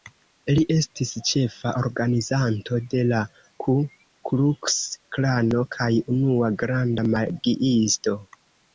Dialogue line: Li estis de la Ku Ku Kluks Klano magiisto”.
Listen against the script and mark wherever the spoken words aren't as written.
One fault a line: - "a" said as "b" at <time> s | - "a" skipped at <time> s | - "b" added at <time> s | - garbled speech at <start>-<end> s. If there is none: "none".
- "ĉefa organizanto" added at 1.3 s
- "Ku" skipped at 3.8 s
- "kaj unua granda" added at 5.8 s